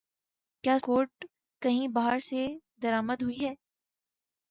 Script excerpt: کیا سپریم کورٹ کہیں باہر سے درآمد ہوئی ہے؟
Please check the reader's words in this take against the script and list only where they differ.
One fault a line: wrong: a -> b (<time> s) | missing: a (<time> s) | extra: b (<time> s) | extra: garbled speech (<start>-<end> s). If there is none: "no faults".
missing: سپریم (0.8 s)